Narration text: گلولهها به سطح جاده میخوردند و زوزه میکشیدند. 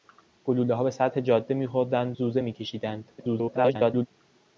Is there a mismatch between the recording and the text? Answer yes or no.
yes